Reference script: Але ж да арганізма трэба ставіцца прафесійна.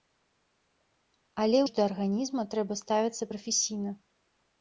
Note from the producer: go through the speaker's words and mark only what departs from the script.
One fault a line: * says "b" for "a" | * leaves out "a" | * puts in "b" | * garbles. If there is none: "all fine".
all fine